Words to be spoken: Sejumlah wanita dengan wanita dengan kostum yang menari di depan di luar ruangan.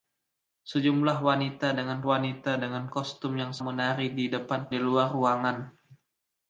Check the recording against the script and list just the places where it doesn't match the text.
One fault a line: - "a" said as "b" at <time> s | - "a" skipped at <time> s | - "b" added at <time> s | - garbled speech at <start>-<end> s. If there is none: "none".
none